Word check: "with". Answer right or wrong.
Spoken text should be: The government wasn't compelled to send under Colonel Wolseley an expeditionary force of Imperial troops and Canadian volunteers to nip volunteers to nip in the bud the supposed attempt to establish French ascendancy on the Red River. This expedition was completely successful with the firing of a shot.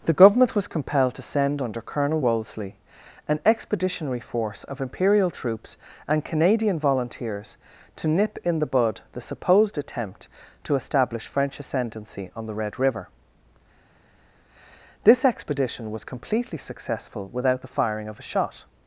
wrong